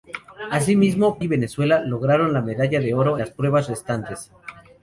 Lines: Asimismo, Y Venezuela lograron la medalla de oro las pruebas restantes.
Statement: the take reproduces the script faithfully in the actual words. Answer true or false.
true